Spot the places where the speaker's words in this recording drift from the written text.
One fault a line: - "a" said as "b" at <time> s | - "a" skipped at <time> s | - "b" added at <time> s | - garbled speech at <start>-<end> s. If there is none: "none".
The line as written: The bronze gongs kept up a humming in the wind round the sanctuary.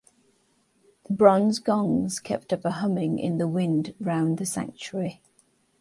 none